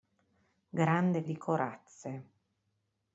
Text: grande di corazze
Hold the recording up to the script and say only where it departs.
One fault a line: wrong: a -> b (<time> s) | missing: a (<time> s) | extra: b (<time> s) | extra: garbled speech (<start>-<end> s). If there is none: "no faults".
no faults